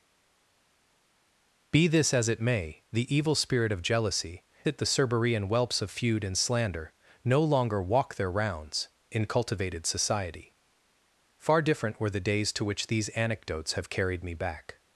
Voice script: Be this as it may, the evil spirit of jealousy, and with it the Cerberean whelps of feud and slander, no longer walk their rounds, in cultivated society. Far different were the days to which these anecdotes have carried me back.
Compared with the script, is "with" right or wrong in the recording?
wrong